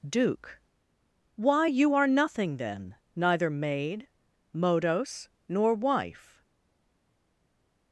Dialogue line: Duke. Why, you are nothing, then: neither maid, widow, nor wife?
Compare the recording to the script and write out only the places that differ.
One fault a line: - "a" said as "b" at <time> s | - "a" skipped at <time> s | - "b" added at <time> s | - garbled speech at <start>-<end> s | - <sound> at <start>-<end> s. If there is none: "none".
- "widow" said as "modos" at 4.5 s